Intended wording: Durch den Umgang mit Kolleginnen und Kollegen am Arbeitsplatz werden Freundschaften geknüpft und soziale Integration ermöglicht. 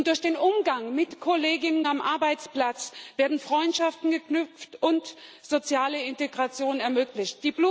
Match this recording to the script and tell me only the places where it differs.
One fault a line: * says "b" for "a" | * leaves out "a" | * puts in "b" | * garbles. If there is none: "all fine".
* leaves out "Kollegen"